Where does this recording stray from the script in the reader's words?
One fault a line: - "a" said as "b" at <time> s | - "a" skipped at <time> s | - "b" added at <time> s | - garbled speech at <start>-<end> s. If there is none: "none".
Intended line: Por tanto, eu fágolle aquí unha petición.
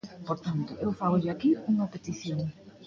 none